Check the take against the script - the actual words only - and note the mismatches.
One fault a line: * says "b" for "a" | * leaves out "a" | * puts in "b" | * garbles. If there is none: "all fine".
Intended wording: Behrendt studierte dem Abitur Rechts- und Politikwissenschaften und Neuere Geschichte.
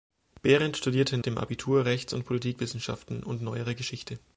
all fine